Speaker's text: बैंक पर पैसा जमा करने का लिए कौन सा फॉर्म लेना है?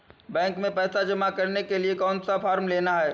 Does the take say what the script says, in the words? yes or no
no